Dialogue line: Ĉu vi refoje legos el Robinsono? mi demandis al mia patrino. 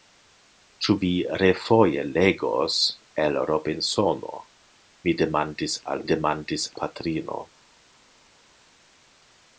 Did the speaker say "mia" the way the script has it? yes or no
no